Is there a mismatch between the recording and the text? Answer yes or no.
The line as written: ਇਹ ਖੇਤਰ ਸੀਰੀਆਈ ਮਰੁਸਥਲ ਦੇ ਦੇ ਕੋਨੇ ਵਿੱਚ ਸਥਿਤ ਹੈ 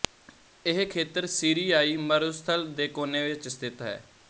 yes